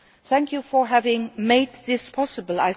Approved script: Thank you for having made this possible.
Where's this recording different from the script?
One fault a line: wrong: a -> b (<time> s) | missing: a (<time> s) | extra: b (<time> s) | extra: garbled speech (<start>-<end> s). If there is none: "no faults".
no faults